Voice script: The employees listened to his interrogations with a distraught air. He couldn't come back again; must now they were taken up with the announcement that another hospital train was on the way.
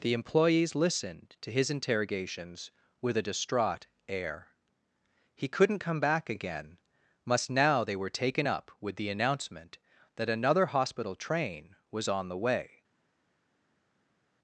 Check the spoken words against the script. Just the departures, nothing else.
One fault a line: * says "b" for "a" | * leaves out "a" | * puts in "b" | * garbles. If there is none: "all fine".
all fine